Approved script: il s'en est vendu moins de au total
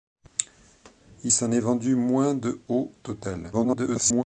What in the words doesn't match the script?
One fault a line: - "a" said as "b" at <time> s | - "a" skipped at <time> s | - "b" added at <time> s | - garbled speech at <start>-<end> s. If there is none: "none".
- garbled speech at 3.5-4.2 s